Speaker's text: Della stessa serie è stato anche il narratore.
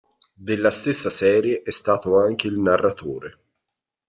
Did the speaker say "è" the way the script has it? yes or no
yes